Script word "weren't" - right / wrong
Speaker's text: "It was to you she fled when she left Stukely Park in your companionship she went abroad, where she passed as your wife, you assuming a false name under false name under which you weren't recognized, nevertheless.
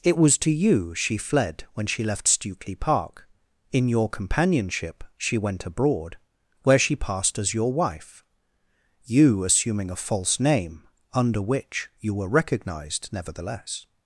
wrong